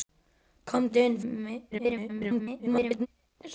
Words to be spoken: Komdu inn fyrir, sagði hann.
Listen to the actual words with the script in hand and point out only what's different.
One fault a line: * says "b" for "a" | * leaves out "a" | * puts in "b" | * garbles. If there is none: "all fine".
* leaves out "fyrir"
* garbles